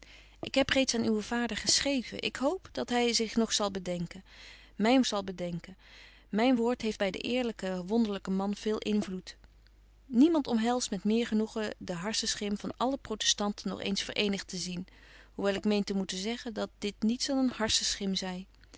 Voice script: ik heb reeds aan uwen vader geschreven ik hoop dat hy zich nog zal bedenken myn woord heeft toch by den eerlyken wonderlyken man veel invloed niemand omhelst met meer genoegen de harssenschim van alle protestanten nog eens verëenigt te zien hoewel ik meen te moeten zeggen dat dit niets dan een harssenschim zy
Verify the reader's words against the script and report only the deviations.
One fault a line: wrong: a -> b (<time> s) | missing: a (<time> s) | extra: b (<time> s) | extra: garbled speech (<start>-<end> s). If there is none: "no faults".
extra: zal bedenken myn (5.1 s)
missing: toch (7.0 s)